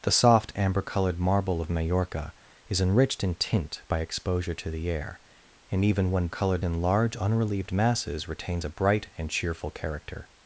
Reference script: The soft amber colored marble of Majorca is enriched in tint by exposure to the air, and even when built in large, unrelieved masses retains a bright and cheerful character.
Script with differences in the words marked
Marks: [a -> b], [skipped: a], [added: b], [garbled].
The soft amber colored marble of Majorca is enriched in tint by exposure to the air, and even when [built -> colored] in large, unrelieved masses retains a bright and cheerful character.